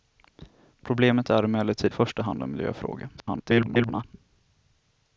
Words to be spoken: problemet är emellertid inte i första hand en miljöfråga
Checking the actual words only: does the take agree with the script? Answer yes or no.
no